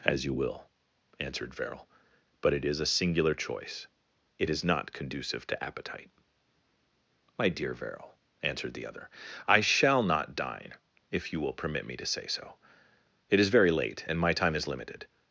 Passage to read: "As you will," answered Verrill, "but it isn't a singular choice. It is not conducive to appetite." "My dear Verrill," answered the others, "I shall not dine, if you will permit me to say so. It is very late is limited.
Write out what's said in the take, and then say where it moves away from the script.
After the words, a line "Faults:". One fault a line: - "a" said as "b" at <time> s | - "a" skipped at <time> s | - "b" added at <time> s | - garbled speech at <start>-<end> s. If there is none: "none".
"As you will," answered Verrill, "but it is a singular choice. It is not conducive to appetite." "My dear Verrill," answered the other, "I shall not dine, if you will permit me to say so. It is very late and my time is limited.
Faults:
- "isn't" said as "is" at 2.6 s
- "others" said as "other" at 8.9 s
- "and my time" added at 14.1 s